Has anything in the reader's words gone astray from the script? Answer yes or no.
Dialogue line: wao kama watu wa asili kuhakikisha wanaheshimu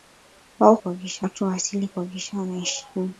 yes